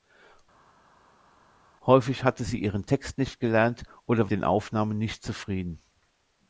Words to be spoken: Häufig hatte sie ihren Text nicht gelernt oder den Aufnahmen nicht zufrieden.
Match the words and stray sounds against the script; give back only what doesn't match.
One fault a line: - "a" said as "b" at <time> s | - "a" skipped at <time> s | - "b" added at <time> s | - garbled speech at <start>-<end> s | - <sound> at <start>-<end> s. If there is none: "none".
none